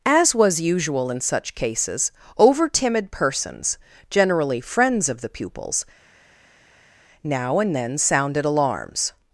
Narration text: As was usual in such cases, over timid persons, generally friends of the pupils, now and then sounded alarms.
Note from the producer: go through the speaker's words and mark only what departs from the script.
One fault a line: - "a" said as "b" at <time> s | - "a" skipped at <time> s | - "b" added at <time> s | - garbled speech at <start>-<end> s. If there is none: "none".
none